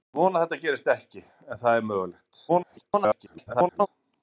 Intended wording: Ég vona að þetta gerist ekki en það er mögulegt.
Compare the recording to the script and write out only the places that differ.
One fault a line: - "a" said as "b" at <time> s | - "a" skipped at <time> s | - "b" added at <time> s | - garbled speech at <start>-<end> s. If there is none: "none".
- garbled speech at 2.5-3.9 s